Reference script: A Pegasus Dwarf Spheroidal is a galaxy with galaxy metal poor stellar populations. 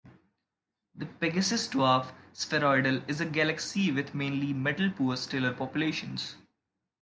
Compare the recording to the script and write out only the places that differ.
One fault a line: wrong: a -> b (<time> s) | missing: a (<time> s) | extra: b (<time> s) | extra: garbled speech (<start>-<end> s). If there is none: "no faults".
wrong: A -> The (0.9 s)
wrong: galaxy -> mainly (4.1 s)